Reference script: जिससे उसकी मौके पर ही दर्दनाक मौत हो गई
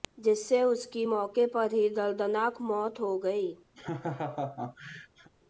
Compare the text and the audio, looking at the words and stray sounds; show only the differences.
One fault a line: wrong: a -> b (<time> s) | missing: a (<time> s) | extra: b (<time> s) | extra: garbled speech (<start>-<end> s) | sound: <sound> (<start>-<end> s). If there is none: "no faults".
sound: laugh (3.7-5.3 s)